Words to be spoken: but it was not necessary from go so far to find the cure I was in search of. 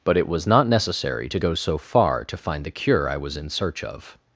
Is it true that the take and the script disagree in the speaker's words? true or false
true